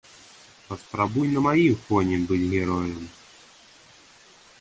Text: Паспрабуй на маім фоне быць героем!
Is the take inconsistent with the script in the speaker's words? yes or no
no